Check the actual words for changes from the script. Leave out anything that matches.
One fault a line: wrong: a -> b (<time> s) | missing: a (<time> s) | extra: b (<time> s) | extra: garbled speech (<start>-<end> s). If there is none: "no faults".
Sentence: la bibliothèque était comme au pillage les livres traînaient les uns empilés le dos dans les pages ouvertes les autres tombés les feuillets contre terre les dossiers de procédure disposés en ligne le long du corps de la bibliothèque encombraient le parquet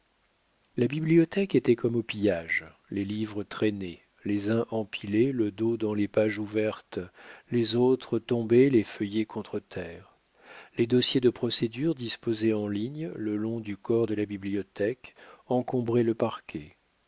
no faults